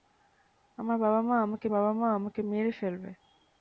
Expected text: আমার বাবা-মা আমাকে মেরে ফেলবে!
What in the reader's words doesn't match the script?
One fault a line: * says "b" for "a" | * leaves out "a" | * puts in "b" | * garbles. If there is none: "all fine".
* puts in "বাবা-মা আমাকে"